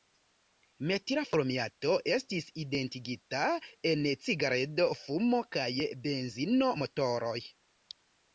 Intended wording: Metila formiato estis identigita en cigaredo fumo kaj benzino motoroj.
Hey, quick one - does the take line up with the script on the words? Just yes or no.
yes